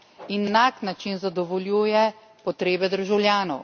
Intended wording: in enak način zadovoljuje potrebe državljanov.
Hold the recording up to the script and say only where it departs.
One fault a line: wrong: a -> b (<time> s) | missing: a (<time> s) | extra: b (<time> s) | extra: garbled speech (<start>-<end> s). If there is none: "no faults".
no faults